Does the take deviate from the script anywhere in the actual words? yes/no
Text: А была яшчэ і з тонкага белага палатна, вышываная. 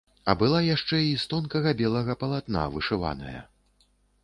no